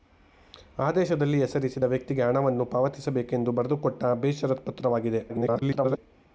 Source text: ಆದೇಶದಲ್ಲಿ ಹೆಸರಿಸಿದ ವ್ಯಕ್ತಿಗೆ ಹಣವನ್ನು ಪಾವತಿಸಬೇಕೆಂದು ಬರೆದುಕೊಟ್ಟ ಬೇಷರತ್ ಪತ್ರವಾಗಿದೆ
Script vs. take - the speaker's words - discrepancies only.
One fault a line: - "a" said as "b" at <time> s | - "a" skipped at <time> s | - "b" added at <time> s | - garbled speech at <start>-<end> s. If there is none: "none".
- garbled speech at 5.3-6.0 s